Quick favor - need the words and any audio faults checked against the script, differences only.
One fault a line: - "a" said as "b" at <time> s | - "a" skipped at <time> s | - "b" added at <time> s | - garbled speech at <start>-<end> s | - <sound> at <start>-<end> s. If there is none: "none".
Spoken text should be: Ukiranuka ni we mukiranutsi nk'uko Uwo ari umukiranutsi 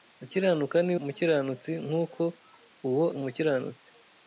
- "we" skipped at 0.9 s
- "ari" skipped at 3.1 s